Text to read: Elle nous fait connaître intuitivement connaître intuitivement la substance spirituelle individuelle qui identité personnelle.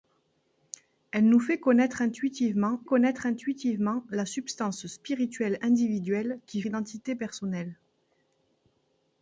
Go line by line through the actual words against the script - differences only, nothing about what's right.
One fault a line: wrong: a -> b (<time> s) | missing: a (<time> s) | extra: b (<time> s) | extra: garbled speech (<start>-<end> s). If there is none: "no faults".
no faults